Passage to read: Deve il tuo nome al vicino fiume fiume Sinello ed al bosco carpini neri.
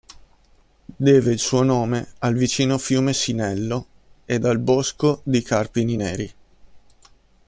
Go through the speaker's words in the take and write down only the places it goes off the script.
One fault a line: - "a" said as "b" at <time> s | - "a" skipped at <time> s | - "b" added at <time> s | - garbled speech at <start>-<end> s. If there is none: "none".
- "tuo" said as "suo" at 1.4 s
- "fiume" skipped at 3.1 s
- "di" added at 5.2 s